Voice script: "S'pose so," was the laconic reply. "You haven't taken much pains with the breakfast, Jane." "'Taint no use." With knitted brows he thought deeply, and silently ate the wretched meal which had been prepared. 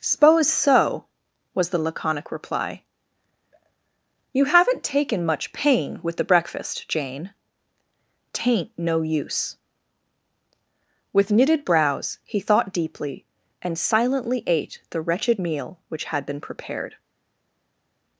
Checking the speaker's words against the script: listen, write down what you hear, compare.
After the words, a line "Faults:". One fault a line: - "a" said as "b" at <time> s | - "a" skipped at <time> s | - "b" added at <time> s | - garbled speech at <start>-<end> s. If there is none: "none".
"S'pose so," was the laconic reply. "You haven't taken much pain with the breakfast, Jane." "'Taint no use." With knitted brows he thought deeply, and silently ate the wretched meal which had been prepared.
Faults:
- "pains" said as "pain" at 5.5 s